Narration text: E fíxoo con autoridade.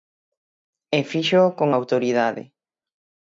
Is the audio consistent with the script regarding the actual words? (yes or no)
yes